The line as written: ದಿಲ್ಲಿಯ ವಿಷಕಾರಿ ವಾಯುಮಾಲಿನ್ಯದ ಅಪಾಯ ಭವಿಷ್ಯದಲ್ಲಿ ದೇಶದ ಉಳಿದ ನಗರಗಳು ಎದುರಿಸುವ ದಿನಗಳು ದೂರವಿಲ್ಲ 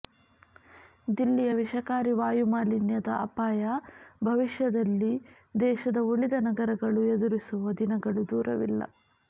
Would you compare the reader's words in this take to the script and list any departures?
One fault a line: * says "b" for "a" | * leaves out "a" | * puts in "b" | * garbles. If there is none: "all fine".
all fine